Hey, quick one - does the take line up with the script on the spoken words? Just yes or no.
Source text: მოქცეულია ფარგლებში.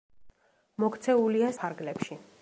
yes